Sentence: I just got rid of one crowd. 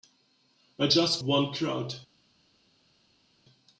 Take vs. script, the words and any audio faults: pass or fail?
fail